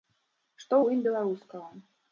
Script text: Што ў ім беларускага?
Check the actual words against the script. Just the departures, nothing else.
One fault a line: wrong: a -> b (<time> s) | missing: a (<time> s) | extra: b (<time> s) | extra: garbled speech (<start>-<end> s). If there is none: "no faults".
no faults